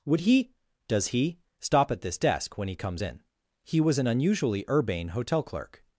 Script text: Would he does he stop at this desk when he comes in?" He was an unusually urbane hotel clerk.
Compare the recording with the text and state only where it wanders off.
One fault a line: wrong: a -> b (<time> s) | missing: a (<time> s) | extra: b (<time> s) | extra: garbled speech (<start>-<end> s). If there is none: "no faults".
no faults